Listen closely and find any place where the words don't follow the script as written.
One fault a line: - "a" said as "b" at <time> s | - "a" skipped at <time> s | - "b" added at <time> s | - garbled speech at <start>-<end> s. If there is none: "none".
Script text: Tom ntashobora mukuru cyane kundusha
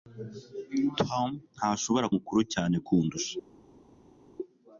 none